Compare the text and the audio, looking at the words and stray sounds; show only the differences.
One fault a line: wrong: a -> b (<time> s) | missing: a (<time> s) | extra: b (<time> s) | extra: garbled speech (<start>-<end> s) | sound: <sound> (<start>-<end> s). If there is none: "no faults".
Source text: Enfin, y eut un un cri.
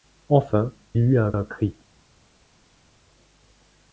no faults